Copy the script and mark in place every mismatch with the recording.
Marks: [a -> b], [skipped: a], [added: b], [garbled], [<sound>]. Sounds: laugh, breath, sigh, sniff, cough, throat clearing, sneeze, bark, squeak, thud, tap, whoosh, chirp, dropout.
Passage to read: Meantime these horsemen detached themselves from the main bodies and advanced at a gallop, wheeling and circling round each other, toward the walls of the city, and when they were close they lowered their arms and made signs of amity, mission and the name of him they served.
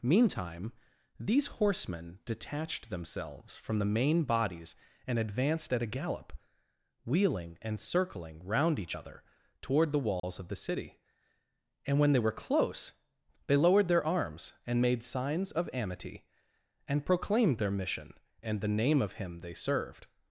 Meantime these horsemen detached themselves from the main bodies and advanced at a gallop, wheeling and circling round each other, toward the walls [dropout] of the city, and when they were close they lowered their arms and made signs of amity, [added: and proclaimed their] mission and the name of him they served.